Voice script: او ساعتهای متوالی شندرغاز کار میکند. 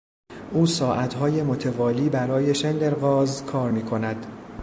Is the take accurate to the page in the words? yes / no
no